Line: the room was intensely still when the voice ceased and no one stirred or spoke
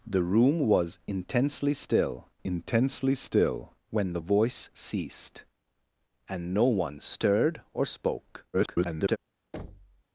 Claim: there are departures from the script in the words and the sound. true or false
true